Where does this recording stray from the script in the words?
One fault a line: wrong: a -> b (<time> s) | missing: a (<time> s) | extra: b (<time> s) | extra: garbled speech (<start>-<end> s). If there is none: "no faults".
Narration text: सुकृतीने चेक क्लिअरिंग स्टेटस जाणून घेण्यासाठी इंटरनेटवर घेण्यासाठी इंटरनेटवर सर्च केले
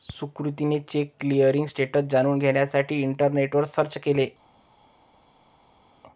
missing: घेण्यासाठी इंटरनेटवर (3.6 s)